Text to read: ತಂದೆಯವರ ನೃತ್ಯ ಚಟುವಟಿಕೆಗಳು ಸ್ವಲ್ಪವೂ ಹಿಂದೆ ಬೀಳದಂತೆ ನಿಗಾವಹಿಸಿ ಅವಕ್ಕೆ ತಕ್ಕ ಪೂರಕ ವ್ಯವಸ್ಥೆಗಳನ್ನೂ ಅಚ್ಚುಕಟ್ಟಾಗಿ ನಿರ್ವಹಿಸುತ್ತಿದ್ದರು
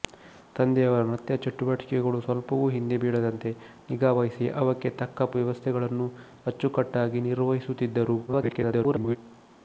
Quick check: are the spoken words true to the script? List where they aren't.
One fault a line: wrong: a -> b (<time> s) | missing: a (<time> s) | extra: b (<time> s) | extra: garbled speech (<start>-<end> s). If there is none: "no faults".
missing: ಪೂರಕ (5.3 s)
extra: garbled speech (8.3-9.2 s)